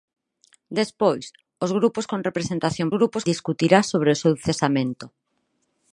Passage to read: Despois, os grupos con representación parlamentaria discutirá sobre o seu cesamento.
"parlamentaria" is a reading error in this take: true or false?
true